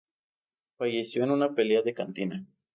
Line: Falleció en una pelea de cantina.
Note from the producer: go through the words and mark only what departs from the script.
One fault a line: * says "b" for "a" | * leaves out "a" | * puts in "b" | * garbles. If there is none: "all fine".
all fine